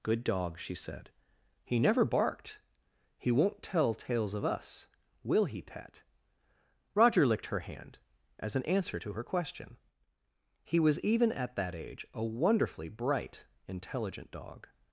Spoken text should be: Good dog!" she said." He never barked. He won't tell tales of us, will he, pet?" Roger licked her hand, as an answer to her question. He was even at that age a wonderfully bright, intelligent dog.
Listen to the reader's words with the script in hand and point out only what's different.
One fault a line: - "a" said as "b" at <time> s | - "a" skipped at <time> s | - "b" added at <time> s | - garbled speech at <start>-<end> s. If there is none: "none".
none